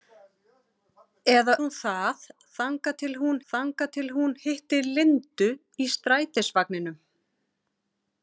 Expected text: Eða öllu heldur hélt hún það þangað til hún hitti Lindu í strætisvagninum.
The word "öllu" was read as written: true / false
false